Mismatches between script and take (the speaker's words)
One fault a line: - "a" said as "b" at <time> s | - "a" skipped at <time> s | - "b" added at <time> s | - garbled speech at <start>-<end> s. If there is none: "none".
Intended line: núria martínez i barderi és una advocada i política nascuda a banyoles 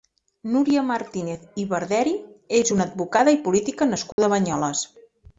none